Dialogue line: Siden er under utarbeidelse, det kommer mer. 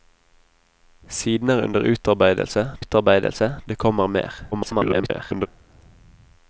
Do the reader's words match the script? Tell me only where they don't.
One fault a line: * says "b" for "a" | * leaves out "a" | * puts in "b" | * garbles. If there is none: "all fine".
* puts in "utarbeidelse"
* garbles